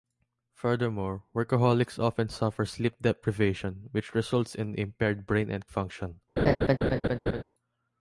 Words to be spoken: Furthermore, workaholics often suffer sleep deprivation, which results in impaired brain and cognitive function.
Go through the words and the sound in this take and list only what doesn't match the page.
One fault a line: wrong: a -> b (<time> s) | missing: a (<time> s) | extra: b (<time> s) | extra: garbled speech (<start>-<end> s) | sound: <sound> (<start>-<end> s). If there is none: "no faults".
missing: cognitive (5.7 s)
sound: laugh (6.4-7.4 s)